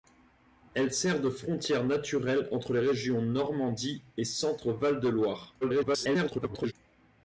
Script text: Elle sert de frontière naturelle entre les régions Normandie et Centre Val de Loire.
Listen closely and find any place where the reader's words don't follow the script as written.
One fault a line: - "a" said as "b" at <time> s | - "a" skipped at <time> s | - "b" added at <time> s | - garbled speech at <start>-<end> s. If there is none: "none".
- garbled speech at 5.6-6.7 s